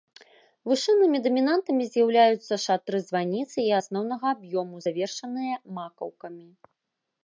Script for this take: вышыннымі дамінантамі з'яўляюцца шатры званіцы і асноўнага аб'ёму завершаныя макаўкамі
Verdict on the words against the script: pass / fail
pass